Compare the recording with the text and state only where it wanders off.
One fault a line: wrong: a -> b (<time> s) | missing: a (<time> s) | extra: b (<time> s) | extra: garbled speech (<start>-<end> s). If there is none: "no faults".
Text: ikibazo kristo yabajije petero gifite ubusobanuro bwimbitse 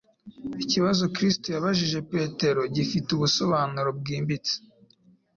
no faults